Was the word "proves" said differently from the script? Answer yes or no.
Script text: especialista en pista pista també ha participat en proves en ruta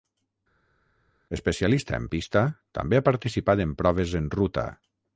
no